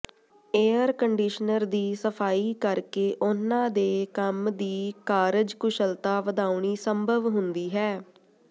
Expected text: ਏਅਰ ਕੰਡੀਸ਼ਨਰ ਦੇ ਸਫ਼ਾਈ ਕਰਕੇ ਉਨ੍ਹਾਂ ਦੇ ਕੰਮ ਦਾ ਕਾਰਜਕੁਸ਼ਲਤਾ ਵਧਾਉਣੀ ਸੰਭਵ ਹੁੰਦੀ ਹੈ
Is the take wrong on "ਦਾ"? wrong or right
wrong